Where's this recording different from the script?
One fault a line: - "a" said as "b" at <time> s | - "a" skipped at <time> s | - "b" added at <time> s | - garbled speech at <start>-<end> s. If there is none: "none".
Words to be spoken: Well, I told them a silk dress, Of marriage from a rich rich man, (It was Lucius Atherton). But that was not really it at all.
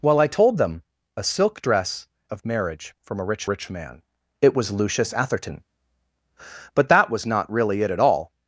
none